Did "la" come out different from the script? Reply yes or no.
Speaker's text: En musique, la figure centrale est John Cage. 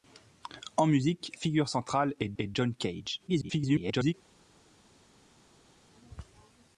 yes